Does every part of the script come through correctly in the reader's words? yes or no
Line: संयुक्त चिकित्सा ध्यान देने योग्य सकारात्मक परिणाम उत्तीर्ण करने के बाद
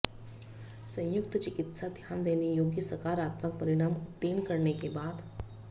yes